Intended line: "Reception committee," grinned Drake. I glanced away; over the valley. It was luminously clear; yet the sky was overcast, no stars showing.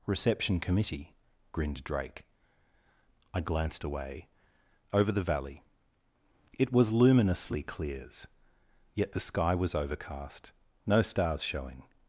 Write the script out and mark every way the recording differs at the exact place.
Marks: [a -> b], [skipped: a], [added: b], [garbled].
"Reception committee," grinned Drake. I glanced away; over the valley. It was luminously [clear; -> clears] yet the sky was overcast, no stars showing.